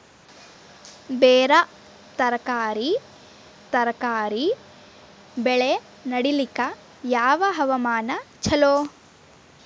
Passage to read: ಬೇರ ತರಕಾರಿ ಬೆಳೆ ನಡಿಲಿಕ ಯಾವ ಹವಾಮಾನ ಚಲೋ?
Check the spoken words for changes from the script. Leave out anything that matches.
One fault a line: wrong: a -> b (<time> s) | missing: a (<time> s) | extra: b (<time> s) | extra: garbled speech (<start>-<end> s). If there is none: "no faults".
extra: ತರಕಾರಿ (3.7 s)